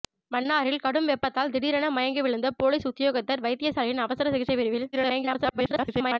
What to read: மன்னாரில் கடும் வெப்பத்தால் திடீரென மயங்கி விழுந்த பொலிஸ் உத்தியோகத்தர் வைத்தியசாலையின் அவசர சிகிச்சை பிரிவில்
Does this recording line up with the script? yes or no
no